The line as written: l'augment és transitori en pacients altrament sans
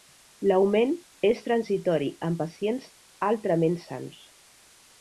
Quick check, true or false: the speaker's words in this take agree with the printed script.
true